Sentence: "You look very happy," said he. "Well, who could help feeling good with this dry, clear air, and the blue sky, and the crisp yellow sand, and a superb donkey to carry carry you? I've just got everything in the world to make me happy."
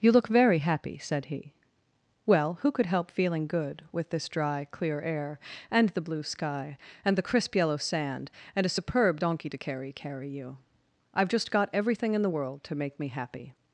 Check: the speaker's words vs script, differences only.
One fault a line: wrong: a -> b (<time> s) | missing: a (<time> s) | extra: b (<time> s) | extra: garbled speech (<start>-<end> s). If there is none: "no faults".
no faults